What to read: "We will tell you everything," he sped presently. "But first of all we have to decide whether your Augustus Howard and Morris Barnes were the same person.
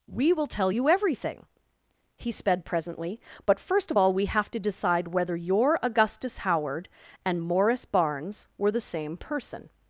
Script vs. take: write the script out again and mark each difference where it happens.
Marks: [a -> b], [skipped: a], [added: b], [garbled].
"We will tell you everything," he sped presently. "But first of all we have to decide whether your Augustus Howard and Morris Barnes were the same person.